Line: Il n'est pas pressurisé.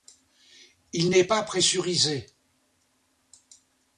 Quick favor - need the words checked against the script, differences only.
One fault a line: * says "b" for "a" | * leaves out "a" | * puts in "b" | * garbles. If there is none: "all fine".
all fine